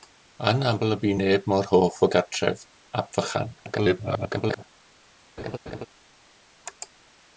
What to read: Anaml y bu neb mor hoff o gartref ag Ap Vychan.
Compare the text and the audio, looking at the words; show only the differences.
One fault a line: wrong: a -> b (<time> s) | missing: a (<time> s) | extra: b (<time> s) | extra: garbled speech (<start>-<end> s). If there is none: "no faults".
missing: ag (2.6 s)
extra: garbled speech (3.6-4.6 s)